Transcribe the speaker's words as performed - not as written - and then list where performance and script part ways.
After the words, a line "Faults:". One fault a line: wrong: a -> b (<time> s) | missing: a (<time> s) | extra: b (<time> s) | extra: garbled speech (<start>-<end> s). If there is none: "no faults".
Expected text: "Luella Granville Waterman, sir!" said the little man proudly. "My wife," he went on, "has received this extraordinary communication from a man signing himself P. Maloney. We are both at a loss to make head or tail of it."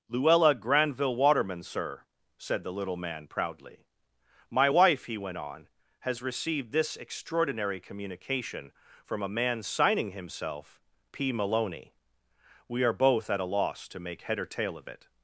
"Luella Granville Waterman, sir!" said the little man proudly. "My wife," he went on, "has received this extraordinary communication from a man signing himself P. Maloney. We are both at a loss to make head or tail of it."
Faults:
no faults